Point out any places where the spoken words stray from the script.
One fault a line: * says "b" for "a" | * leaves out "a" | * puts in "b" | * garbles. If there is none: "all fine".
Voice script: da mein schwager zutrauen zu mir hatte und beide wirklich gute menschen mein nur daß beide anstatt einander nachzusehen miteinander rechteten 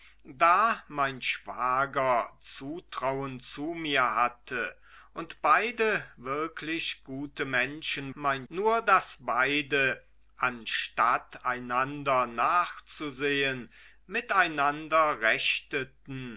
all fine